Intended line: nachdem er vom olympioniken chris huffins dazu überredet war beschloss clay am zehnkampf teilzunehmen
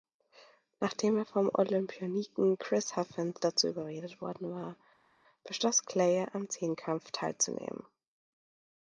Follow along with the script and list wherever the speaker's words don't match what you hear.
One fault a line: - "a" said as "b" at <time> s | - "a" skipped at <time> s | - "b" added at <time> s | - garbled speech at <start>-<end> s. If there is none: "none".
- "worden" added at 4.2 s